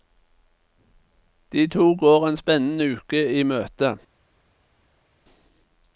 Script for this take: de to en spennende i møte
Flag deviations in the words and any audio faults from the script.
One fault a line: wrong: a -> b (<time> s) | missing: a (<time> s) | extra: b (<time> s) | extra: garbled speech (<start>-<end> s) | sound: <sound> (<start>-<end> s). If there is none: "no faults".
extra: går (1.9 s)
extra: uke (3.0 s)